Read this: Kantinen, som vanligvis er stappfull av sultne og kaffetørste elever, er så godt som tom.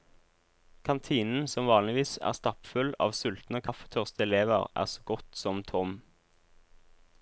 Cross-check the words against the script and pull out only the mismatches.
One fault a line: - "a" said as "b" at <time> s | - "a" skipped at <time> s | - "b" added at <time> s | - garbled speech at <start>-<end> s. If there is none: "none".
none